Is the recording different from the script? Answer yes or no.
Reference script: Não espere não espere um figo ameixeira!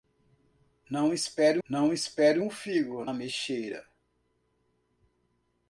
no